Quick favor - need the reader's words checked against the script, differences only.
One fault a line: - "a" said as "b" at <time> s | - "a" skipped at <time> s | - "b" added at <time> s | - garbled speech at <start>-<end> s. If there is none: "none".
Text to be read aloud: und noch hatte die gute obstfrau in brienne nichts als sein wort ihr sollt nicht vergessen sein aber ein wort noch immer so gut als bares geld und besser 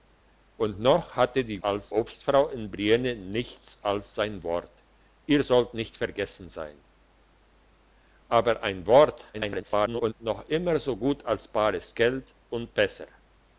- "gute" said as "als" at 1.6 s
- garbled speech at 9.3-10.1 s